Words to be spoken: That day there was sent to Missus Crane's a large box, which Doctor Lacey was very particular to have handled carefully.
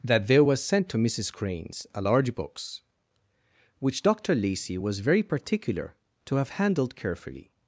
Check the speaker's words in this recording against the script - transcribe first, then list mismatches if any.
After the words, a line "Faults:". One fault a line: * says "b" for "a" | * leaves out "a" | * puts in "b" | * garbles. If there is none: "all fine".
That there was sent to Missus Crane's a large box, which Doctor Lacey was very particular to have handled carefully.
Faults:
* leaves out "day"